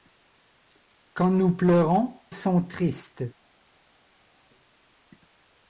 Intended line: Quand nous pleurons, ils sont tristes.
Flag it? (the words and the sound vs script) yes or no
yes